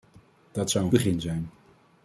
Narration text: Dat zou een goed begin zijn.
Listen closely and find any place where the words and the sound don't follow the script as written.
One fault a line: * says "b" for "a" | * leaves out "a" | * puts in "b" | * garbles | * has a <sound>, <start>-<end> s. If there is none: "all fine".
* leaves out "goed"